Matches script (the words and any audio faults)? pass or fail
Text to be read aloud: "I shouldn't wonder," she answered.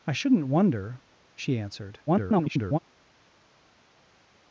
fail